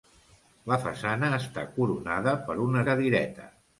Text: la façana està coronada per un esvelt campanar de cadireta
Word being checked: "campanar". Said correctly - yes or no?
no